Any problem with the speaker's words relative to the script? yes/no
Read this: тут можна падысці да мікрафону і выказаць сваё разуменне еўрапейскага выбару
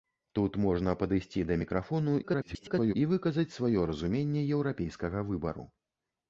yes